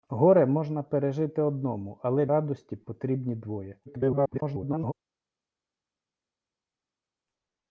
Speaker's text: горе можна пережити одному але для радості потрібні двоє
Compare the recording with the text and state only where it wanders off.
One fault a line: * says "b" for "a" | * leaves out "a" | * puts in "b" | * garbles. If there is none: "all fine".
* leaves out "для"
* garbles